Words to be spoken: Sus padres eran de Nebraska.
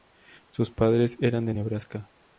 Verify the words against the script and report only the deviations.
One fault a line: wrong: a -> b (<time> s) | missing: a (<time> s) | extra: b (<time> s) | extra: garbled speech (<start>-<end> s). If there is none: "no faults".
no faults